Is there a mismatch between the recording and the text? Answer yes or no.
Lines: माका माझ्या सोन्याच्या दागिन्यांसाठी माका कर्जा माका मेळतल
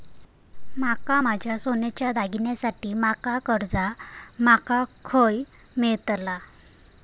yes